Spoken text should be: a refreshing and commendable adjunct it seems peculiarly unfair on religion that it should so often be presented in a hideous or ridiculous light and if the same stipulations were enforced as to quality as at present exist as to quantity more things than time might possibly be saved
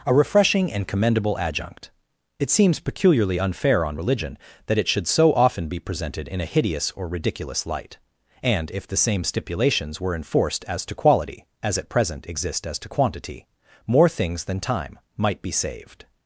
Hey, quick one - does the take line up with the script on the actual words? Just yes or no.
no